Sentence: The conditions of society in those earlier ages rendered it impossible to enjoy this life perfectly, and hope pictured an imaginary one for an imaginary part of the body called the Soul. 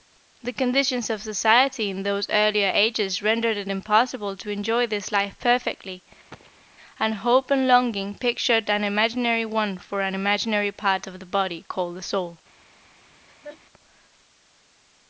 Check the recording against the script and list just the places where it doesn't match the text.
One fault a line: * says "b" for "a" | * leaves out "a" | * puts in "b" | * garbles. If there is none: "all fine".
* puts in "and longing"